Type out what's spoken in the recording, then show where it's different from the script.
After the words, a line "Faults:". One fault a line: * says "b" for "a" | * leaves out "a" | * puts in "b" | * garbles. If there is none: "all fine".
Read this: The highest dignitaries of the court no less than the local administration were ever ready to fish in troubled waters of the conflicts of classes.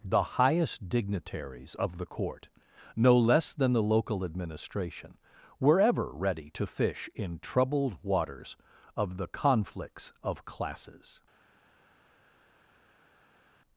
The highest dignitaries of the court no less than the local administration were ever ready to fish in troubled waters of the conflicts of classes.
Faults:
all fine